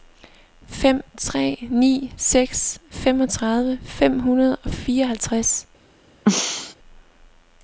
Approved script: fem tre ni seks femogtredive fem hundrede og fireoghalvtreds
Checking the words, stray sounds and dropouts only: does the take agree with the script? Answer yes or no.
no